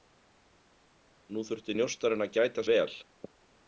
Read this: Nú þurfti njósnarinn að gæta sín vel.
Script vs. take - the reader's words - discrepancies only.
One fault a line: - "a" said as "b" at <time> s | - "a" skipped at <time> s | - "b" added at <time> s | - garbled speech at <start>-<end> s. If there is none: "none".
- "sín" skipped at 2.6 s